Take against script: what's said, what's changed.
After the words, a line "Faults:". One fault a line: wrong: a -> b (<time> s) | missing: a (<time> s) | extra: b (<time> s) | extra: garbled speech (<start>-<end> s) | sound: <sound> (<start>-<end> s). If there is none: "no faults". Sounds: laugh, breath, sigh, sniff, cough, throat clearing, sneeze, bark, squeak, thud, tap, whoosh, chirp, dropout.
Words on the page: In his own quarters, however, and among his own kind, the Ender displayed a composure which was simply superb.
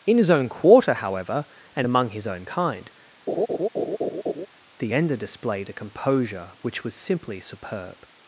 In his own quarter, however, and among his own kind, the Ender displayed a composure which was simply superb.
Faults:
wrong: quarters -> quarter (0.5 s)
sound: laugh (3.3-4.5 s)